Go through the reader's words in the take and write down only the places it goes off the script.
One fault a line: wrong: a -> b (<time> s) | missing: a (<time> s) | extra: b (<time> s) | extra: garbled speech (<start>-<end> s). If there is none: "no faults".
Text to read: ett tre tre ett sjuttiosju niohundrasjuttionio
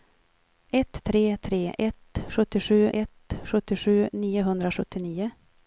extra: ett sjuttiosju (2.9 s)